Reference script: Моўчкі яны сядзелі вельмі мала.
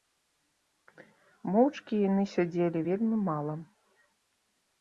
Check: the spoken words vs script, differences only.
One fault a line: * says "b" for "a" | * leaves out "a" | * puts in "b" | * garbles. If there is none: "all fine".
all fine